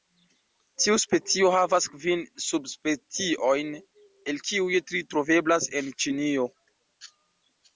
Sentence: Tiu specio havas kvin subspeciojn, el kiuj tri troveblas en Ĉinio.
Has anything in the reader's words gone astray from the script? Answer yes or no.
no